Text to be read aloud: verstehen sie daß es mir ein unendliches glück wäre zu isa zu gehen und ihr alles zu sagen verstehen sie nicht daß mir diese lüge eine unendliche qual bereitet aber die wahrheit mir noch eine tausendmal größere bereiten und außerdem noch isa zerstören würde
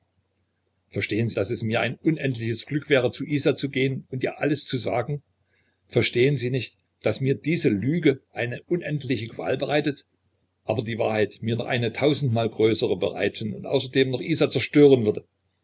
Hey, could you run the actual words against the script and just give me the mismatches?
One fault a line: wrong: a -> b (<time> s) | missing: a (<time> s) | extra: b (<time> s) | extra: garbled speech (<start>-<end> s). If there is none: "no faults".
no faults